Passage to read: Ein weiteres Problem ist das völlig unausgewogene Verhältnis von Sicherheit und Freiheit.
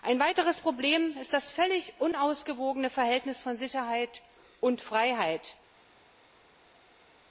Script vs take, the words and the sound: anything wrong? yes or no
no